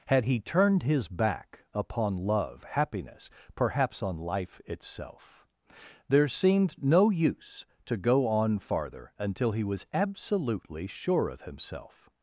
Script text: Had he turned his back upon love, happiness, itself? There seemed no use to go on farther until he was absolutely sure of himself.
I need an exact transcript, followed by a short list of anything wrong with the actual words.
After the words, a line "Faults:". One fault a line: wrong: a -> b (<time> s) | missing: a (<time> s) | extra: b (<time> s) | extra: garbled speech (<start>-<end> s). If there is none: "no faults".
Had he turned his back upon love, happiness, perhaps on life itself? There seemed no use to go on farther until he was absolutely sure of himself.
Faults:
extra: perhaps on life (3.5 s)